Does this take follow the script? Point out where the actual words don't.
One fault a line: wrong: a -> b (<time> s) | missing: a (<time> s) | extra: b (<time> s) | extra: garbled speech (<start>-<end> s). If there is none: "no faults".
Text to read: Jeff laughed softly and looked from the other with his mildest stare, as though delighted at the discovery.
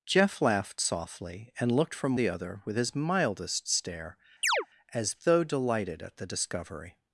no faults